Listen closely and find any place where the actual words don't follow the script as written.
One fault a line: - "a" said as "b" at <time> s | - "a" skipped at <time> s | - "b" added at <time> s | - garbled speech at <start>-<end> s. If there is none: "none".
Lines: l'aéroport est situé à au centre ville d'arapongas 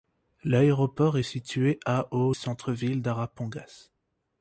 none